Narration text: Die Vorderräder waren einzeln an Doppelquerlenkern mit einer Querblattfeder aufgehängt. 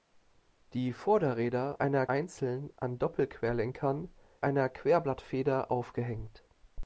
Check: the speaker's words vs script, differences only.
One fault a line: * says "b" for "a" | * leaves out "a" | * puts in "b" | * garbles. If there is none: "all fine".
* says "einer" for "waren"
* leaves out "mit"